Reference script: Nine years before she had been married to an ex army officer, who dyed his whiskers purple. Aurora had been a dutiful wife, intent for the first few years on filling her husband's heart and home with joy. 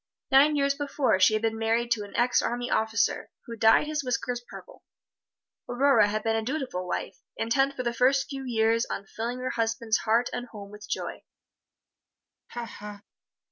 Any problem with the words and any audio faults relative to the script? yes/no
yes